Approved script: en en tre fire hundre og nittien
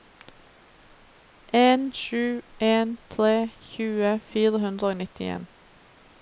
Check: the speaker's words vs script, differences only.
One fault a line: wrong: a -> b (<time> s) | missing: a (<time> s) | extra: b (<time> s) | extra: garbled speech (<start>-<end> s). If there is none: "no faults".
extra: sju (2.0 s)
extra: tjue (3.7 s)